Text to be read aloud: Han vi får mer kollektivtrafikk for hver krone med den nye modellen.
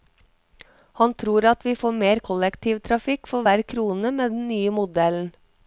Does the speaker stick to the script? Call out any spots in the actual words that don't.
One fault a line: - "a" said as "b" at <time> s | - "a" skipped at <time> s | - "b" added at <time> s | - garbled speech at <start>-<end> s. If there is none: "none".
- "tror at" added at 1.2 s